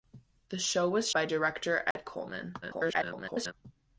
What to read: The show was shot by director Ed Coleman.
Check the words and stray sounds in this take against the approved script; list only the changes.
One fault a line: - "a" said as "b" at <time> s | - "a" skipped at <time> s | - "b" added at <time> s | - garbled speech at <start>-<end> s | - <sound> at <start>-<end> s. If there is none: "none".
- "shot" skipped at 1.1 s
- dropout at 1.9-2.0 s
- garbled speech at 2.6-3.5 s